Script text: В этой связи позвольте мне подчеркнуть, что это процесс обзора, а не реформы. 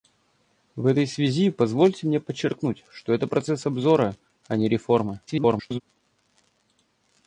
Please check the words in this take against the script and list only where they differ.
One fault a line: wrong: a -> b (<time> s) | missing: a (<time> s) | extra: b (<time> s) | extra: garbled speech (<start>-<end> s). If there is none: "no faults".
extra: garbled speech (5.3-5.8 s)